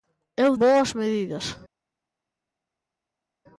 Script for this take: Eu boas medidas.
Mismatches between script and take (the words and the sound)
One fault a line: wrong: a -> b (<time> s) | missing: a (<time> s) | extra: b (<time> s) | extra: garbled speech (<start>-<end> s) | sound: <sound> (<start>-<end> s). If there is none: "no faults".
no faults